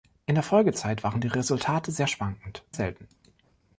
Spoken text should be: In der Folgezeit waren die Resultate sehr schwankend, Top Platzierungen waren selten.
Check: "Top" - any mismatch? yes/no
yes